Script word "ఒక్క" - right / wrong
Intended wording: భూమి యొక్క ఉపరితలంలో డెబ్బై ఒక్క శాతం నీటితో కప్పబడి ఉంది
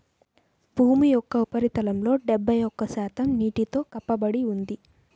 right